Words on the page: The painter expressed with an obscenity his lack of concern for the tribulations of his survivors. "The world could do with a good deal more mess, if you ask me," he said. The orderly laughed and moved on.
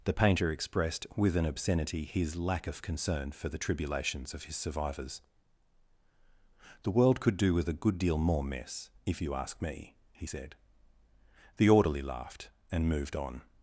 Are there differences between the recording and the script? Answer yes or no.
no